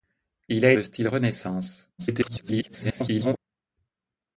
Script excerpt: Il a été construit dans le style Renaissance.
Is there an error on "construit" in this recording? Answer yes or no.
yes